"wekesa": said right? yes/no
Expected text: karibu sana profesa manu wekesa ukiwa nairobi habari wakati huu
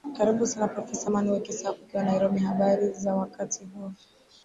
yes